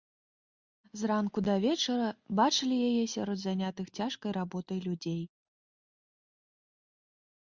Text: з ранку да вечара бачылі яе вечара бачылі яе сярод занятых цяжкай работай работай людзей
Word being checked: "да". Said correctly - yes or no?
yes